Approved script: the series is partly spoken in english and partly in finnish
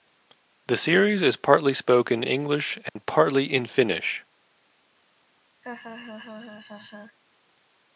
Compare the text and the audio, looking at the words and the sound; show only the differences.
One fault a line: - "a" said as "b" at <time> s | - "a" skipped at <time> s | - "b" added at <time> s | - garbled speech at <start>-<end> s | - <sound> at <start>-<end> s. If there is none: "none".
- "in" skipped at 2.2 s
- dropout at 2.9-3.0 s
- laugh at 5.6-7.2 s